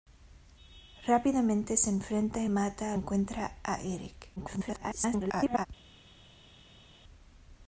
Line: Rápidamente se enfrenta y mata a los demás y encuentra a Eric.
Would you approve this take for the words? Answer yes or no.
no